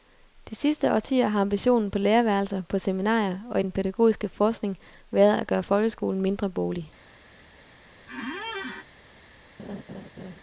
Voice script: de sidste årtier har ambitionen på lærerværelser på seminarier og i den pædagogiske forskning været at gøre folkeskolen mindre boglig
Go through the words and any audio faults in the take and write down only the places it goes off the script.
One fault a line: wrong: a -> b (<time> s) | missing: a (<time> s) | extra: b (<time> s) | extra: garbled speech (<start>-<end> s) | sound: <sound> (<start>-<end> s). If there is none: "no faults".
sound: squeak (8.1-8.9 s)
sound: laugh (9.6-10.4 s)